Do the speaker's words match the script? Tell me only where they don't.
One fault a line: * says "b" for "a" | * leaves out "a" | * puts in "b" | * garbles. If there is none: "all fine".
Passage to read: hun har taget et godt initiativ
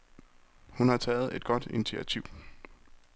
all fine